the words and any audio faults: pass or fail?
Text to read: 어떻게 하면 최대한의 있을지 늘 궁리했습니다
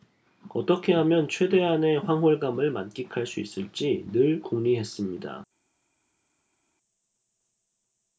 fail